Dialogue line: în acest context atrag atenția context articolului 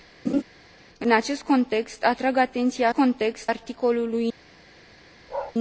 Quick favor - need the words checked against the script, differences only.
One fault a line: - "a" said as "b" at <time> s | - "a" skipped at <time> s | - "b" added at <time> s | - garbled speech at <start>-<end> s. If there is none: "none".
none